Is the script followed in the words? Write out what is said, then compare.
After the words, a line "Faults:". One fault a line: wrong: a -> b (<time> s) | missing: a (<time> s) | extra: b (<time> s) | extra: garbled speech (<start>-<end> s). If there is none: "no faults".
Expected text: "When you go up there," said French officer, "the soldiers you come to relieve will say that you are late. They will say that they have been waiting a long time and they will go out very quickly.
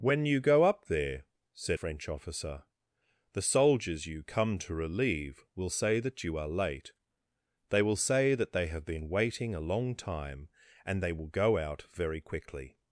"When you go up there," said French officer, "the soldiers you come to relieve will say that you are late. They will say that they have been waiting a long time and they will go out very quickly.
Faults:
no faults